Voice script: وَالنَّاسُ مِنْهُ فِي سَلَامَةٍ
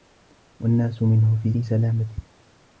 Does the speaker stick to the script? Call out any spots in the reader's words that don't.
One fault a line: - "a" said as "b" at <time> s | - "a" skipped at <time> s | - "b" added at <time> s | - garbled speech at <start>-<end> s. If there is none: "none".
- "فِي" added at 1.5 s